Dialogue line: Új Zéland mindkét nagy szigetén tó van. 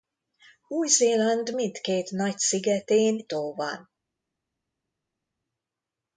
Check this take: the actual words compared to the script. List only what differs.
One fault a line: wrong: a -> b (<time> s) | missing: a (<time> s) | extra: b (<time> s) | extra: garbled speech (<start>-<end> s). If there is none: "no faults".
no faults